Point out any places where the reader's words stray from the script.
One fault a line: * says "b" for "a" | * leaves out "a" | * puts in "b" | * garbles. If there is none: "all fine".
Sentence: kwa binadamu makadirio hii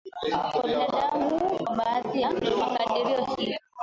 * puts in "kwa baadhi ya"